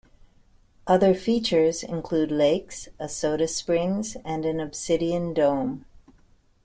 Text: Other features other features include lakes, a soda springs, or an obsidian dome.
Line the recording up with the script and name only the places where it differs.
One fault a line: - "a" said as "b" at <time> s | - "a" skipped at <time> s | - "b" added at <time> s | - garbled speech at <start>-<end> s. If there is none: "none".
- "other features" skipped at 1.8 s
- "or" said as "and" at 4.2 s